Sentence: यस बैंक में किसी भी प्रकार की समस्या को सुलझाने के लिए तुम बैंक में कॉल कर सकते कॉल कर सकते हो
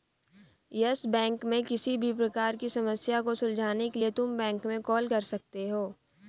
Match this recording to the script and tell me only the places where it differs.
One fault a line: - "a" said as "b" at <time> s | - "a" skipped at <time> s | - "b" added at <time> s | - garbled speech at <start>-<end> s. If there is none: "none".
- "कॉल कर सकते" skipped at 5.7 s